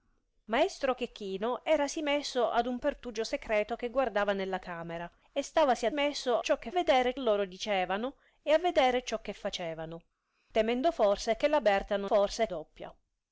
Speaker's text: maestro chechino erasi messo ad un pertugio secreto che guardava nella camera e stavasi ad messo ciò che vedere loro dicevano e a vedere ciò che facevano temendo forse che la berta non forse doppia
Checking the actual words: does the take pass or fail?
pass